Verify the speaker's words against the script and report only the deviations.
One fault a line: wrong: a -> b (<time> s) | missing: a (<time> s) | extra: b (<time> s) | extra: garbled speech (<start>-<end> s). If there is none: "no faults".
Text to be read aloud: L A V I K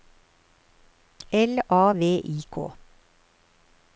no faults